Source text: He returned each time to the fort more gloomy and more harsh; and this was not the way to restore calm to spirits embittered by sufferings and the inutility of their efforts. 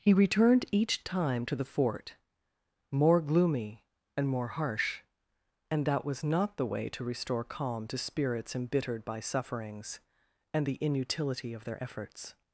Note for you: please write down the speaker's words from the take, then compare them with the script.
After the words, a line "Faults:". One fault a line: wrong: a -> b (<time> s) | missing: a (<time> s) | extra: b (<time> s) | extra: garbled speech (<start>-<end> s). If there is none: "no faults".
He returned each time to the fort more gloomy and more harsh; and that was not the way to restore calm to spirits embittered by sufferings and the inutility of their efforts.
Faults:
wrong: this -> that (5.8 s)